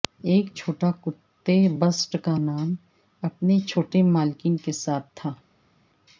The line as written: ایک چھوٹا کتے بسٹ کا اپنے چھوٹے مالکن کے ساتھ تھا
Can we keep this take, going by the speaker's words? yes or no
no